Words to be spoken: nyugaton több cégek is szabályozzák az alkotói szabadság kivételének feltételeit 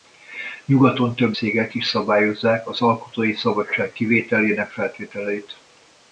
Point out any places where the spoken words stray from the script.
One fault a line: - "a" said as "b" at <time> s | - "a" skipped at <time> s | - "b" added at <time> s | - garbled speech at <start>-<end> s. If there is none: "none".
none